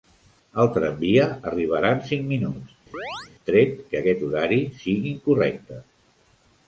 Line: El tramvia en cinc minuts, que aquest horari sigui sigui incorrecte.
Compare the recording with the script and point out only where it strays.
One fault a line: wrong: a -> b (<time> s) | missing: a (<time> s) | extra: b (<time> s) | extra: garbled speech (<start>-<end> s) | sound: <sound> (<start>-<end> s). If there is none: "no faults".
extra: arribarà (1.5 s)
sound: chirp (2.9-3.3 s)
extra: tret (3.5 s)
missing: sigui (5.1 s)